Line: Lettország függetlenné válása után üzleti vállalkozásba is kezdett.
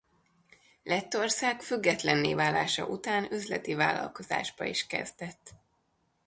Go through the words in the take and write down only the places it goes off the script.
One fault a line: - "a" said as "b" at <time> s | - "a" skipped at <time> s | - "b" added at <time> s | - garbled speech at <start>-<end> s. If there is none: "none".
none